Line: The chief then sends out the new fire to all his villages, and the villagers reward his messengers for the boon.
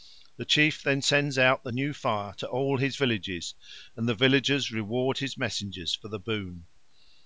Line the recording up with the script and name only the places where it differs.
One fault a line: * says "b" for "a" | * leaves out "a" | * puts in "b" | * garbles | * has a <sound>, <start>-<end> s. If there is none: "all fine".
all fine